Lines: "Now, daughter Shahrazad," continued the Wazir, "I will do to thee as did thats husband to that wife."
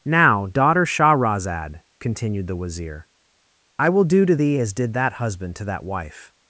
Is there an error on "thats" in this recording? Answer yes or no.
yes